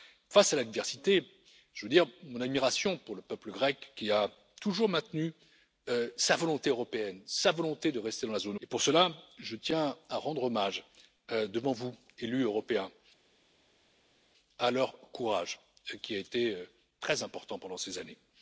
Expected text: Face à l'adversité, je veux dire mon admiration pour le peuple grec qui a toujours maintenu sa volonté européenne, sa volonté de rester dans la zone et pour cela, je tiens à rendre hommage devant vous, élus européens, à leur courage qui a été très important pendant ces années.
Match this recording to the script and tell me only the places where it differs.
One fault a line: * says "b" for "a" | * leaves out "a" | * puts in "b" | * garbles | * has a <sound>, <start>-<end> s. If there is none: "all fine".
all fine